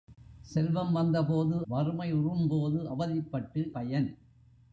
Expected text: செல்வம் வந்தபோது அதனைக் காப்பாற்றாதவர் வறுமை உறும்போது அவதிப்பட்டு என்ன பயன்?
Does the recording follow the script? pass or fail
fail